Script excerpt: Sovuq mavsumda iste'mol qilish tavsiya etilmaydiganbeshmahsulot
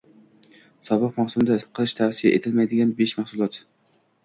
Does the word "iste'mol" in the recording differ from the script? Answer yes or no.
yes